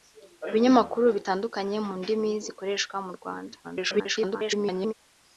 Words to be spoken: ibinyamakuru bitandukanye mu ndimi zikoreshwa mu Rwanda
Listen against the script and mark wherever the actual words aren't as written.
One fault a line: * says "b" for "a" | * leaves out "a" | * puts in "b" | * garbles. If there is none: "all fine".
* garbles